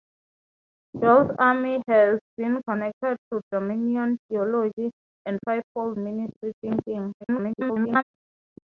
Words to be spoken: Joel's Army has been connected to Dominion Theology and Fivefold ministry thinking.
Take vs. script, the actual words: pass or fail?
fail